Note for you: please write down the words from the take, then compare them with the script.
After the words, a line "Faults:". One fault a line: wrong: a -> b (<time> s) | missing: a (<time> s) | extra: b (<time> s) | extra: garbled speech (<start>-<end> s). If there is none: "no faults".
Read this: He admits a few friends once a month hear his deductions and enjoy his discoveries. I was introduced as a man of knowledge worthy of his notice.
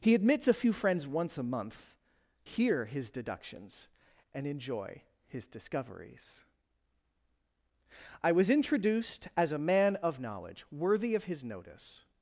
He admits a few friends once a month hear his deductions and enjoy his discoveries. I was introduced as a man of knowledge worthy of his notice.
Faults:
no faults